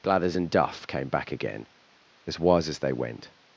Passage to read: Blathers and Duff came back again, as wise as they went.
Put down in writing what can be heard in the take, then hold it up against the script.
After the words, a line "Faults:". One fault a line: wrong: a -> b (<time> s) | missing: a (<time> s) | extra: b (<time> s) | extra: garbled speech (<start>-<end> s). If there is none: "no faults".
Blathers and Duff came back again, as wise as they went.
Faults:
no faults